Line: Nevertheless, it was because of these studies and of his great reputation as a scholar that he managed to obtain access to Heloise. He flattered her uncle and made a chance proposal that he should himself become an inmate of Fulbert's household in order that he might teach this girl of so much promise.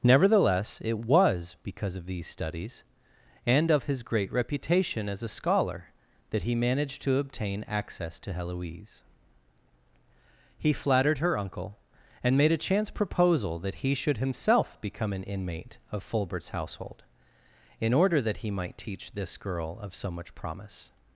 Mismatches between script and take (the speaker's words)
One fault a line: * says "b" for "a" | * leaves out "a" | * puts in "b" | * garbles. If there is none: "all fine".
all fine